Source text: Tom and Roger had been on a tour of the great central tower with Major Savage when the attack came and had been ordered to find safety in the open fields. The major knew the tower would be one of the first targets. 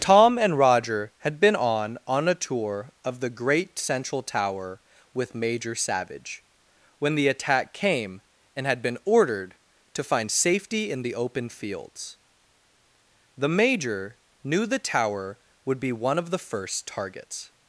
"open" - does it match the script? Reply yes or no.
yes